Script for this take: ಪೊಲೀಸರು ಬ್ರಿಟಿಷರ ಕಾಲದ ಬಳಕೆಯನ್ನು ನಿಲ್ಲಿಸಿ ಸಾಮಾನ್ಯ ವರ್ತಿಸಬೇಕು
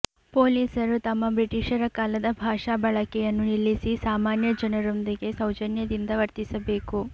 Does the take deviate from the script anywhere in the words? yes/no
yes